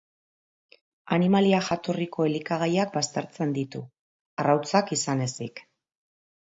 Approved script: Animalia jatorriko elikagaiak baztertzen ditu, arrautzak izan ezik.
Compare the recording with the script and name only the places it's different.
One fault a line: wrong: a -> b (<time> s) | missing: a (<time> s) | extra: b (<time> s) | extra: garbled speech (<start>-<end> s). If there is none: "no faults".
no faults